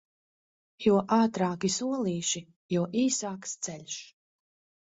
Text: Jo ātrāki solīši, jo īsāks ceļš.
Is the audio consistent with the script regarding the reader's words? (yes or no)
yes